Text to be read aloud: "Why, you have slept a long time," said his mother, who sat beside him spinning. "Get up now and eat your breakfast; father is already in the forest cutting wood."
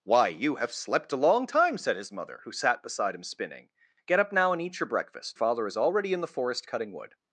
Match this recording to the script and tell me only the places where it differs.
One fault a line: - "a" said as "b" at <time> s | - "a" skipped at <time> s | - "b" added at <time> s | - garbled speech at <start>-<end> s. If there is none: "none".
none